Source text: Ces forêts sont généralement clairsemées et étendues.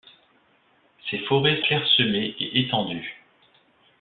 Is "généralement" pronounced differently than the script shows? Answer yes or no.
yes